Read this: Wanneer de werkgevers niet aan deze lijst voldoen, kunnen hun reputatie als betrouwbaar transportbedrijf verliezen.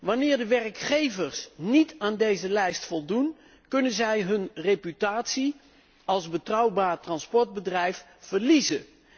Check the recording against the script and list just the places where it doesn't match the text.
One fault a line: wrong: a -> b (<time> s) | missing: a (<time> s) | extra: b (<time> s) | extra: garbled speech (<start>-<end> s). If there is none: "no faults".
extra: zij (3.9 s)